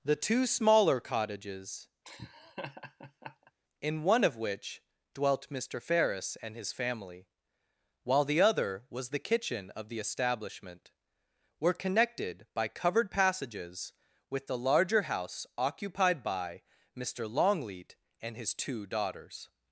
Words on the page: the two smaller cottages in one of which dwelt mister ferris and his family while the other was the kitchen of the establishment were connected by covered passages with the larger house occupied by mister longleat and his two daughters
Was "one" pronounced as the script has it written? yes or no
yes